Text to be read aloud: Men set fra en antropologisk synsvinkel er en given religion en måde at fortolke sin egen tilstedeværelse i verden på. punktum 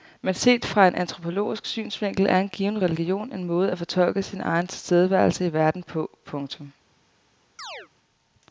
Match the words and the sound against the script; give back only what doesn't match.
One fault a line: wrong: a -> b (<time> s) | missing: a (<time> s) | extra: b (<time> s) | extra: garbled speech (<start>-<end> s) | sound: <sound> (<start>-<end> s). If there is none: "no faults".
sound: chirp (7.6-7.9 s)